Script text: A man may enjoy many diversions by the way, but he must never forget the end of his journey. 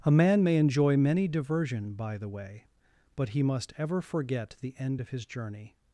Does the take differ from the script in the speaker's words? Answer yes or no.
yes